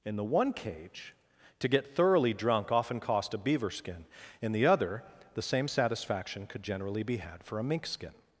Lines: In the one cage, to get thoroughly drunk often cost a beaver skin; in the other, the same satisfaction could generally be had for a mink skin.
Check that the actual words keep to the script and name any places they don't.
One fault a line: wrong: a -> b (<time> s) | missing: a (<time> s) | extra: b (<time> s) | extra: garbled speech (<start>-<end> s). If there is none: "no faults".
no faults